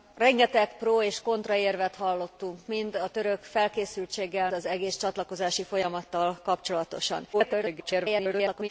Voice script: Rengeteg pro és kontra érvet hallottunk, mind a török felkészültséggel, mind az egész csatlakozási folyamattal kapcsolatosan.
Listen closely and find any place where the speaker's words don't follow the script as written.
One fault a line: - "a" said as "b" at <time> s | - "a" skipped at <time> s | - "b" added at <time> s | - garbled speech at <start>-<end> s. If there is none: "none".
- "mind" skipped at 4.5 s
- garbled speech at 7.3-8.7 s